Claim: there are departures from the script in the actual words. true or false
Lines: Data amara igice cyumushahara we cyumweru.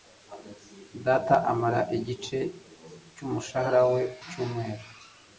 false